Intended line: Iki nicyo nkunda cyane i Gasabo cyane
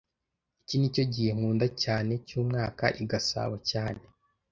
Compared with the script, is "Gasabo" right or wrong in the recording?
right